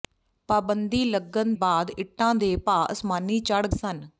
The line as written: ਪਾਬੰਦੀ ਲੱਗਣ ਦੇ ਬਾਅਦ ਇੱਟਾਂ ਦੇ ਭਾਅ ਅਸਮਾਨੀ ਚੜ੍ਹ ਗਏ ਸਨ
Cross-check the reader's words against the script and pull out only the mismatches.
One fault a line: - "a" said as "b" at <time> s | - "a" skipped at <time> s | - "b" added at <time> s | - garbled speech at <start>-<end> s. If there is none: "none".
- "ਦੇ" skipped at 1.5 s
- "ਗਏ" skipped at 3.7 s